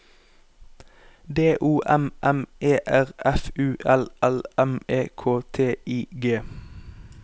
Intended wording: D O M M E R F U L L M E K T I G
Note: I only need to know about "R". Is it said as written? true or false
true